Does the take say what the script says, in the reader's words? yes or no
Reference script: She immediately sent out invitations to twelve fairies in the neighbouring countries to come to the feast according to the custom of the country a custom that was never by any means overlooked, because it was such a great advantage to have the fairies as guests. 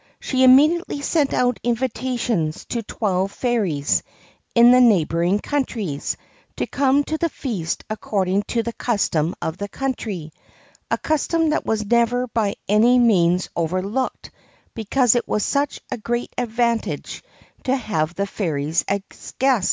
yes